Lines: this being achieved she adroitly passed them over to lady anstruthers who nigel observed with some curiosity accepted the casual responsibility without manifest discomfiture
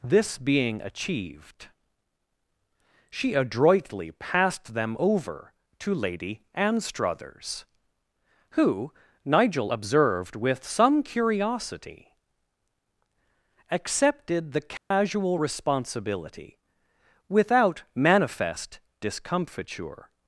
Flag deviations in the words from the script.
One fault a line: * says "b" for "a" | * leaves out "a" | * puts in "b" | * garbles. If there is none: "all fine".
all fine